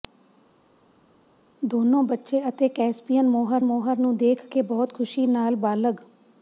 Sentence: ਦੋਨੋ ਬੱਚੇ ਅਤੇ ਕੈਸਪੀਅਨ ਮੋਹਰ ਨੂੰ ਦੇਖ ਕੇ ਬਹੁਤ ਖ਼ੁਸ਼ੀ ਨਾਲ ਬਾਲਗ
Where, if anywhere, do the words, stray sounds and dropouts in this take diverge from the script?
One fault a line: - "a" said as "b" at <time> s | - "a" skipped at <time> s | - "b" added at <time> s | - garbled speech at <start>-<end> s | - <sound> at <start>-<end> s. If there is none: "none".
- "ਮੋਹਰ" added at 3.6 s